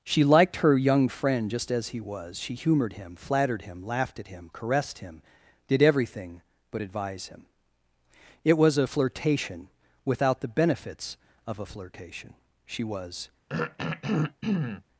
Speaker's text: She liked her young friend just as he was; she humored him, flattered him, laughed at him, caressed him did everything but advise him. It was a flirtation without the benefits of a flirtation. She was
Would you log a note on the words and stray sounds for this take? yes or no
yes